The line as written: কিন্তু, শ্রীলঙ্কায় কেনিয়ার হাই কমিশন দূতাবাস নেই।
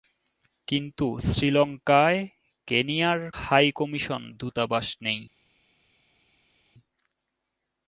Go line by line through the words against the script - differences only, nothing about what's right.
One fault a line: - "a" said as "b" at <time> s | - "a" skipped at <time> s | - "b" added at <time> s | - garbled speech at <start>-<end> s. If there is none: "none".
none